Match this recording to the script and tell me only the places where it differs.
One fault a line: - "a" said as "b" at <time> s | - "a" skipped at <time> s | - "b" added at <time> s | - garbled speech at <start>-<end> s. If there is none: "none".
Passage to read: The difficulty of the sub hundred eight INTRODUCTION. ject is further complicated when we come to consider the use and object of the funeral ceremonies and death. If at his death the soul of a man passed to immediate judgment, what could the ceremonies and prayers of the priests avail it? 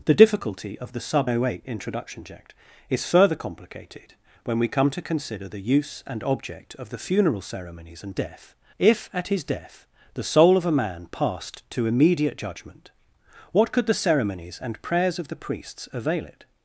none